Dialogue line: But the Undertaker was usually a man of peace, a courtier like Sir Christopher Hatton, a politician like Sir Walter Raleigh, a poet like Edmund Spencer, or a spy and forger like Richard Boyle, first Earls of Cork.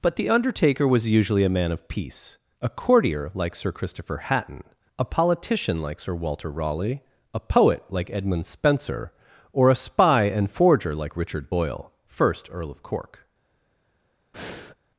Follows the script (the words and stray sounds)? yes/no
no